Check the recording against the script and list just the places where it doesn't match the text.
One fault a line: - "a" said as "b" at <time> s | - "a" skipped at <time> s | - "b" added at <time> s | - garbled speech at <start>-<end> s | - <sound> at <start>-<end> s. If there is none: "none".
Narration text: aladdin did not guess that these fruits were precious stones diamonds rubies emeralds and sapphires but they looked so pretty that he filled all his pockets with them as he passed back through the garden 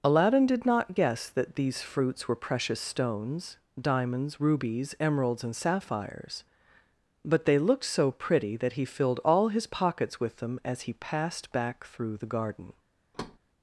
- thud at 13.1-13.4 s